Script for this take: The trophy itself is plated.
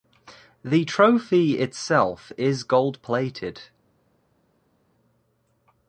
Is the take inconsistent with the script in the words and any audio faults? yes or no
yes